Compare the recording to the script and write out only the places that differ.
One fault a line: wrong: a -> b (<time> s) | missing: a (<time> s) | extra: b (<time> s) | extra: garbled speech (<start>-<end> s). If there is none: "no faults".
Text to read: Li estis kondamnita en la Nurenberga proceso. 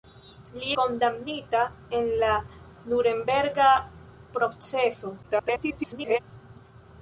missing: estis (0.7 s)
extra: garbled speech (5.2-6.2 s)